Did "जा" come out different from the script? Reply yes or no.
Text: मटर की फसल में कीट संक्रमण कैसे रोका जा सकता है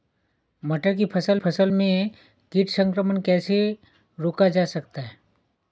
no